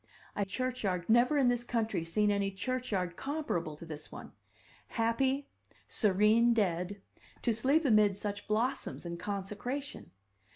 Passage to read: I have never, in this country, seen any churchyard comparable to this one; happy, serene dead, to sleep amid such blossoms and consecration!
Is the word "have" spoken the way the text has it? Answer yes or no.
no